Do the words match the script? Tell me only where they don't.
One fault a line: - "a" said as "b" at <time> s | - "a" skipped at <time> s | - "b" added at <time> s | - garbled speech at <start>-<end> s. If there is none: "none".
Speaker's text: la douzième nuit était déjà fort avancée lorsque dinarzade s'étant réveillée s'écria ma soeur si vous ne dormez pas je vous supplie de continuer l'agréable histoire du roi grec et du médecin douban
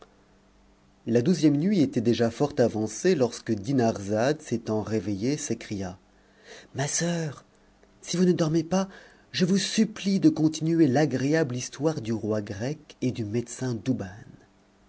none